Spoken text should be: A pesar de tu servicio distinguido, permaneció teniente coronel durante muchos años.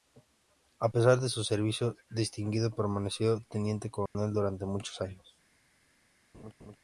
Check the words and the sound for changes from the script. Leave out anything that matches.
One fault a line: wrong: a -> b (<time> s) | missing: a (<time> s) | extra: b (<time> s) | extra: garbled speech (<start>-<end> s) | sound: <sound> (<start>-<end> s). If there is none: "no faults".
wrong: tu -> su (1.3 s)
sound: dropout (4.1-4.1 s)
sound: laugh (6.3-6.8 s)